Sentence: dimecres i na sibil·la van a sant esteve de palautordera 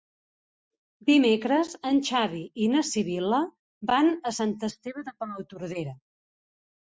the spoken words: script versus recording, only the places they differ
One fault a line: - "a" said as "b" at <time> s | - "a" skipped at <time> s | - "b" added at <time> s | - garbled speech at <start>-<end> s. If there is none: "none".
- "en xavi" added at 1.9 s